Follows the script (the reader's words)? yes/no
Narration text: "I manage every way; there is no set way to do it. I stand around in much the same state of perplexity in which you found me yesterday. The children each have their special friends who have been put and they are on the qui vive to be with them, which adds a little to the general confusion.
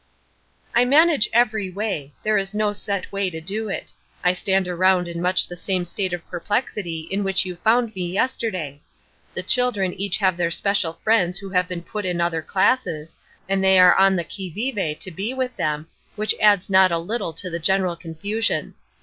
no